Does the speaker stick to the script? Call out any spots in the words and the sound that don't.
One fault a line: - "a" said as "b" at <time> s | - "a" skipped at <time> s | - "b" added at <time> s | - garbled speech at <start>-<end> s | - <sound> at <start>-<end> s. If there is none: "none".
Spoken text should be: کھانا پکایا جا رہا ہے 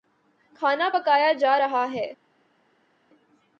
none